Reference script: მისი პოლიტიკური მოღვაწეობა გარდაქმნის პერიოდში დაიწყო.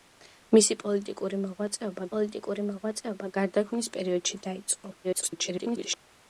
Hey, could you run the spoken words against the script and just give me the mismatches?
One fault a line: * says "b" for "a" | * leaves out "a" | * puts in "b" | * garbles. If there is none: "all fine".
* puts in "პოლიტიკური მოღვაწეობა"
* garbles